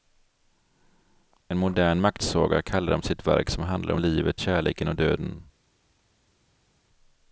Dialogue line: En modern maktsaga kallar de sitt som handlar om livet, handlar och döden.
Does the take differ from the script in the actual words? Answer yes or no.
yes